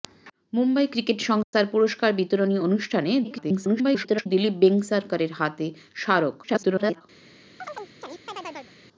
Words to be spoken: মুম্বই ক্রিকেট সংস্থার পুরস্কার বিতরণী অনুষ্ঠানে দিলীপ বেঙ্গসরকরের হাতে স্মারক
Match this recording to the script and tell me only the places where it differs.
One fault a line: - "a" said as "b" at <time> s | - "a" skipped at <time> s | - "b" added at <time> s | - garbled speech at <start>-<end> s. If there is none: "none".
- garbled speech at 3.2-4.3 s
- garbled speech at 6.4-7.0 s